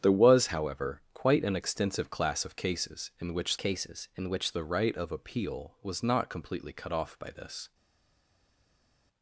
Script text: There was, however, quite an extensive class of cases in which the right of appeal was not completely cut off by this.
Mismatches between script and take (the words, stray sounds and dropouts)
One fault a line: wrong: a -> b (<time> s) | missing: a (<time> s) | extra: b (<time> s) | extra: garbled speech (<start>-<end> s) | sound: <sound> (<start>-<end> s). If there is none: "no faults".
extra: cases in which (3.6 s)